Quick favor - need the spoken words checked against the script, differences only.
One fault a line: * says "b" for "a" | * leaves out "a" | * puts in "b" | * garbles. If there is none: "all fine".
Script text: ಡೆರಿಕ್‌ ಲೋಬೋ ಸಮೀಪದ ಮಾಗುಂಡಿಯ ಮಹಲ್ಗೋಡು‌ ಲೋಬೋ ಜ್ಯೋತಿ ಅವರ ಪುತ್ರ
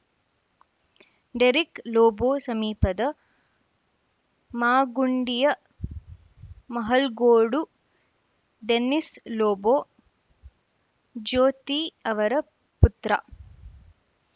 * puts in "ಡೆನ್ನಿಸ್"